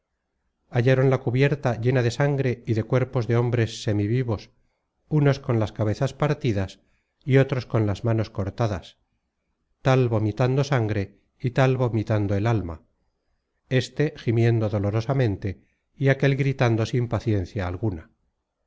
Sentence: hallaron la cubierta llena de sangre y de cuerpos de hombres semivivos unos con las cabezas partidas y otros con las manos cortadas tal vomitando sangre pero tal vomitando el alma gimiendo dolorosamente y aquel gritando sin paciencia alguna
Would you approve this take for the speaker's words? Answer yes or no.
no